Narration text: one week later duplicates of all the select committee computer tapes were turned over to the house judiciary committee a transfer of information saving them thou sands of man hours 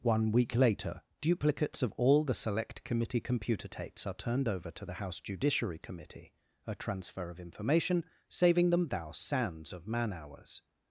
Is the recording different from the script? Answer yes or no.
yes